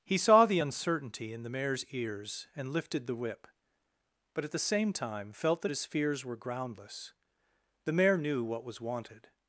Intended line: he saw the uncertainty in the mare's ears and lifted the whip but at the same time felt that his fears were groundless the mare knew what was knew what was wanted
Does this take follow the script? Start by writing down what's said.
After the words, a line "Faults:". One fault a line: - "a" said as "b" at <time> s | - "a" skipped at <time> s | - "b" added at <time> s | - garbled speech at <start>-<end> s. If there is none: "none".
he saw the uncertainty in the mare's ears and lifted the whip but at the same time felt that his fears were groundless the mare knew what was wanted
Faults:
- "knew what was" skipped at 8.8 s